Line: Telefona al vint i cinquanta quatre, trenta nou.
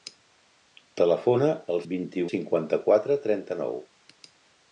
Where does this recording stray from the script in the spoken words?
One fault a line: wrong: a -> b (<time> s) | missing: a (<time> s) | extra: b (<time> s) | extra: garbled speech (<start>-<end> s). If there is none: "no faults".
no faults